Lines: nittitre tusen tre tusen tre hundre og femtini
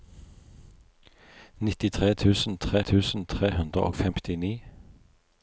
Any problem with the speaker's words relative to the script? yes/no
no